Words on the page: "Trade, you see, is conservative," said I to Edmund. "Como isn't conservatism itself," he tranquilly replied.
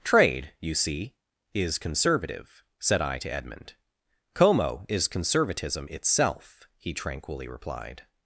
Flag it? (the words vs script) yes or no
yes